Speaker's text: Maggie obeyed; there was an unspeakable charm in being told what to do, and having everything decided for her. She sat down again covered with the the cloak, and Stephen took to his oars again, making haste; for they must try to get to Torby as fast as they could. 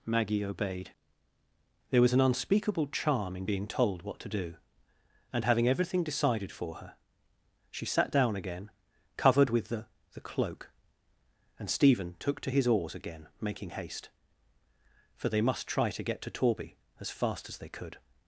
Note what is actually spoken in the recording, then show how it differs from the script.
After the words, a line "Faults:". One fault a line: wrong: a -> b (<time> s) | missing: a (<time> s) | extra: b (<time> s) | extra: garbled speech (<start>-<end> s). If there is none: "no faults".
Maggie obeyed; there was an unspeakable charm in being told what to do, and having everything decided for her. She sat down again covered with the the cloak, and Stephen took to his oars again, making haste; for they must try to get to Torby as fast as they could.
Faults:
no faults